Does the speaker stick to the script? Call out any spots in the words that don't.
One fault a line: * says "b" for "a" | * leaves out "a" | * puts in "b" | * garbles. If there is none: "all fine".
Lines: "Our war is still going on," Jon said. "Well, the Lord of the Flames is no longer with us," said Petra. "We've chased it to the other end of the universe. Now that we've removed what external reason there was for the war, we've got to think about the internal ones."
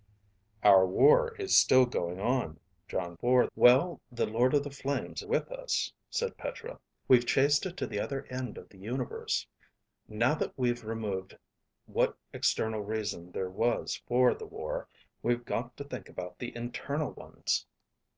* says "for" for "said"
* leaves out "is no longer"